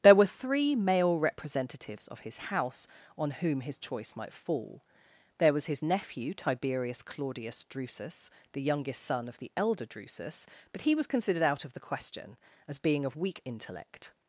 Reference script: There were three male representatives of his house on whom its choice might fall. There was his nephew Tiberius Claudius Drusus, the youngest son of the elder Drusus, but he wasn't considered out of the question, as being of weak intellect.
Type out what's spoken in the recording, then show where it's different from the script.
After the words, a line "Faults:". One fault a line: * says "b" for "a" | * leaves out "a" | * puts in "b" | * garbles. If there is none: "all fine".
There were three male representatives of his house on whom his choice might fall. There was his nephew Tiberius Claudius Drusus, the youngest son of the elder Drusus, but he was considered out of the question, as being of weak intellect.
Faults:
* says "his" for "its"
* says "was" for "wasn't"